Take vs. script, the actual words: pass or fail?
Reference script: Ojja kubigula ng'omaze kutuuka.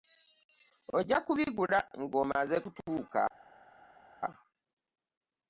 pass